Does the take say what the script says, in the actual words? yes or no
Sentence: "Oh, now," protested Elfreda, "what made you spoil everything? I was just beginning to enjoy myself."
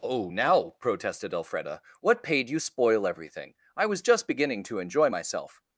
no